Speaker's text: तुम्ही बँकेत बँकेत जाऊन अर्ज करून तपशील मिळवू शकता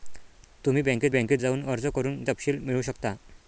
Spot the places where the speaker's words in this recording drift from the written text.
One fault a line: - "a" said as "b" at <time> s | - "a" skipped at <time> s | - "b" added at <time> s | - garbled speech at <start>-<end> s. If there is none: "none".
none